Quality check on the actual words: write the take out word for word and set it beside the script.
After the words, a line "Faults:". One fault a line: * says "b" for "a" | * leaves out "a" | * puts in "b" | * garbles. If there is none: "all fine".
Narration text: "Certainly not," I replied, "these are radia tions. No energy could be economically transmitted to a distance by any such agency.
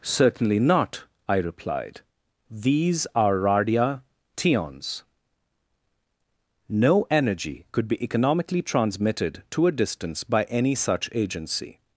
"Certainly not," I replied, "these are radia tions. No energy could be economically transmitted to a distance by any such agency.
Faults:
all fine